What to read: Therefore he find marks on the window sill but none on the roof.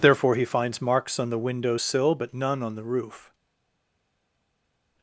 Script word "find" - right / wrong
wrong